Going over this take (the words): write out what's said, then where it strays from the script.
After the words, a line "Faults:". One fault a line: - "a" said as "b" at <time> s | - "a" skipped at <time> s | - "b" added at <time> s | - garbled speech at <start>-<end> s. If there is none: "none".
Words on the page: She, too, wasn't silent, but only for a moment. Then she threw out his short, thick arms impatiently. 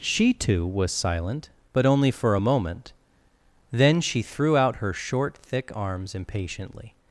She, too, was silent, but only for a moment. Then she threw out her short, thick arms impatiently.
Faults:
- "wasn't" said as "was" at 0.7 s
- "his" said as "her" at 4.7 s